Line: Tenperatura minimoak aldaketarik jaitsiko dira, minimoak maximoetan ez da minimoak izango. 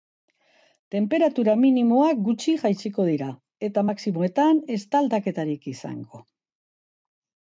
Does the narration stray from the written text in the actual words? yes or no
yes